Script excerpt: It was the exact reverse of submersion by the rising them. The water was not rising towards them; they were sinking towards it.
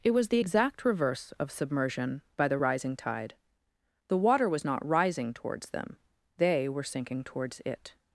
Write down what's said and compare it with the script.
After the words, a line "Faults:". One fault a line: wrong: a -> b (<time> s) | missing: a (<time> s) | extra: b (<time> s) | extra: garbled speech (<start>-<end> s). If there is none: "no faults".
It was the exact reverse of submersion by the rising tide. The water was not rising towards them; they were sinking towards it.
Faults:
wrong: them -> tide (3.0 s)